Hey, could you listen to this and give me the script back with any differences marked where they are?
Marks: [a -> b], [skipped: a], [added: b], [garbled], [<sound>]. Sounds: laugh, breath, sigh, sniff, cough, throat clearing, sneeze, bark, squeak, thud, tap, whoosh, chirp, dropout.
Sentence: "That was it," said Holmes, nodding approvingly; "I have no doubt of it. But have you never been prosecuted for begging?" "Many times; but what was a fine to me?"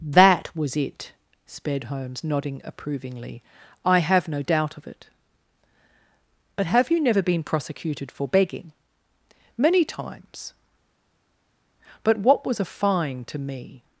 "That was it," [said -> sped] Holmes, nodding approvingly; "I have no doubt of it. But have you never been prosecuted for begging?" "Many times; but what was a fine to me?"